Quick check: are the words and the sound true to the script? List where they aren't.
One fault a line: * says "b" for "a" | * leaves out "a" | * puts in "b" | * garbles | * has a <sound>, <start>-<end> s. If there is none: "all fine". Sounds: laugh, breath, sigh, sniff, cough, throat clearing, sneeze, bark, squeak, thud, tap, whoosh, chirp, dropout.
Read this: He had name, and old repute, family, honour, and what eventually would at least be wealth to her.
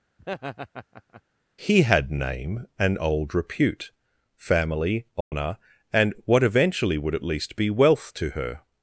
* has a laugh, 0.2-1.2 s
* has a dropout, 5.2-5.3 s